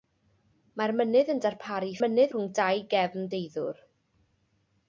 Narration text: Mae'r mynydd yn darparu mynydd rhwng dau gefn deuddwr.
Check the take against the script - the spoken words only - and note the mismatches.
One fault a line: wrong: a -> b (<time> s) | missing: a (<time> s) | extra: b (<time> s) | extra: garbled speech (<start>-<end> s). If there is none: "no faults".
no faults